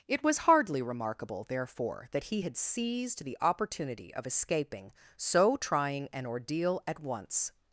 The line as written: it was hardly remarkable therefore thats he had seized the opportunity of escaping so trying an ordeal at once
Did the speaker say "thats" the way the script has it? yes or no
no